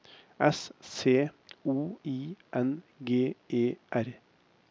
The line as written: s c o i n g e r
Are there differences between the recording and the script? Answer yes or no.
no